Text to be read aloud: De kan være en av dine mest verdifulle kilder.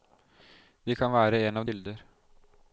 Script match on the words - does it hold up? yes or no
no